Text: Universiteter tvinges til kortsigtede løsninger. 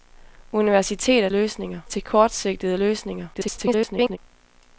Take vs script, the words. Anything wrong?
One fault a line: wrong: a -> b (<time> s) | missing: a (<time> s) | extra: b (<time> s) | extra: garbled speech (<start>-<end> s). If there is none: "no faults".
wrong: tvinges -> løsninger (1.3 s)
extra: garbled speech (3.3-4.2 s)